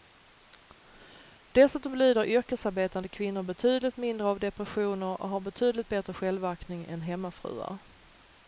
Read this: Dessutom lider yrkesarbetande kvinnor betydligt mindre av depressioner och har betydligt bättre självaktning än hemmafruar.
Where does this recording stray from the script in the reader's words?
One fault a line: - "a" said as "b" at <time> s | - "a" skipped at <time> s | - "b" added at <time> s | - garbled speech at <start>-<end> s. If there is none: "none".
none